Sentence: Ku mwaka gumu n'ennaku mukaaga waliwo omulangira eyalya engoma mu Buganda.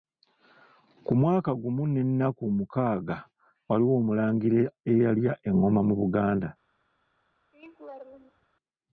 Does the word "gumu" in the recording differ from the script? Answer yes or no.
no